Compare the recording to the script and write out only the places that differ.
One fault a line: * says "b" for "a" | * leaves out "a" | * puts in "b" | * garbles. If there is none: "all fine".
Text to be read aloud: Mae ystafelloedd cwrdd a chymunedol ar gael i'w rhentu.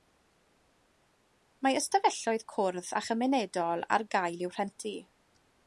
all fine